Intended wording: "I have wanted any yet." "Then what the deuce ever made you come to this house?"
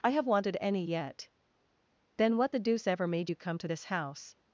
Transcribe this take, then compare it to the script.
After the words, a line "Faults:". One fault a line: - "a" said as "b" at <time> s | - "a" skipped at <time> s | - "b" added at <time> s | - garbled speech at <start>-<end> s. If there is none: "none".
"I have wanted any yet." "Then what the deuce ever made you come to this house?"
Faults:
none